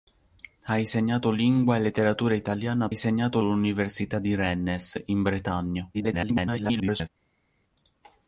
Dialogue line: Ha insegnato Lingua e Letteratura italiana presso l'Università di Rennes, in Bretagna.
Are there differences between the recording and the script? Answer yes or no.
yes